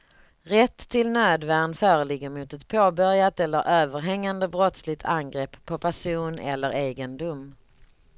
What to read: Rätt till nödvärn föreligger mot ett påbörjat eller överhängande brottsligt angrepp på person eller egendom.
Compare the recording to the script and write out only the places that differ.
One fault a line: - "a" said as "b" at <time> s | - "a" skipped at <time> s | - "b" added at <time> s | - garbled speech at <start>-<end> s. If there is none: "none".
none